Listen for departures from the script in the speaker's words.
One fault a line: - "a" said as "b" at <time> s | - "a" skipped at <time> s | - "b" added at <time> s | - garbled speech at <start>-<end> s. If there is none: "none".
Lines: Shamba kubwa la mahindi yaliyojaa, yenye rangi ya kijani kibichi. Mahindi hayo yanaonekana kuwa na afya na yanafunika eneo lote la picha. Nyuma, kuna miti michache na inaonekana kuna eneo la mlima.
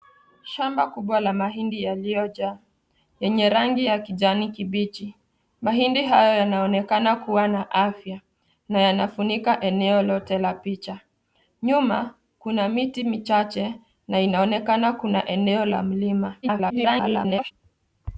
- garbled speech at 16.4-17.5 s